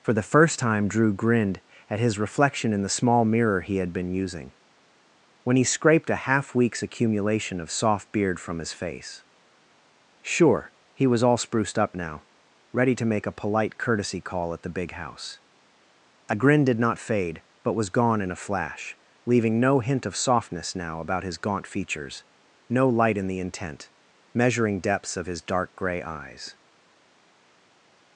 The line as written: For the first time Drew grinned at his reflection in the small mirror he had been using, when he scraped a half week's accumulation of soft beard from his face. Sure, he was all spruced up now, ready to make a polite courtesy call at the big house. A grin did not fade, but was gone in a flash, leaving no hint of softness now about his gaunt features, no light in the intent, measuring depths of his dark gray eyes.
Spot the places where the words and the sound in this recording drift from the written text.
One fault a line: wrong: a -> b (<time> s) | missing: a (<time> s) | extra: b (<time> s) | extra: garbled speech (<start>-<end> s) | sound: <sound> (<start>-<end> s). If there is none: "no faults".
no faults